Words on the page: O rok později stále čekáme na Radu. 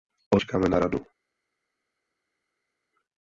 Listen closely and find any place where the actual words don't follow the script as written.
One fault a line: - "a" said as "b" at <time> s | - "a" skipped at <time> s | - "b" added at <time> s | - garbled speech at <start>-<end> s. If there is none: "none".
- "rok později stále" skipped at 0.4 s